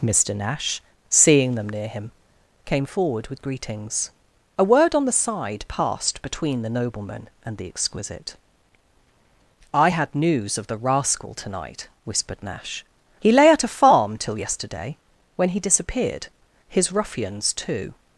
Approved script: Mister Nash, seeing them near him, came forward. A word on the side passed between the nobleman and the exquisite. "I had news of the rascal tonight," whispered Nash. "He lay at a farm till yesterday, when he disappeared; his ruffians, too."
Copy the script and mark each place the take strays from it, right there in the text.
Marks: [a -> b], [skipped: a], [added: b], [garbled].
Mister Nash, seeing them near him, came forward. [added: with greetings] A word on the side passed between the nobleman and the exquisite. "I had news of the rascal tonight," whispered Nash. "He lay at a farm till yesterday, when he disappeared; his ruffians, too."